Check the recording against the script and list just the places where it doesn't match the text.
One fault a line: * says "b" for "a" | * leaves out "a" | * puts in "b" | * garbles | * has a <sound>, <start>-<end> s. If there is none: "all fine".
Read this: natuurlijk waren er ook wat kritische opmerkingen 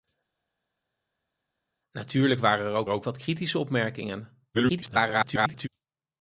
* puts in "ook"
* garbles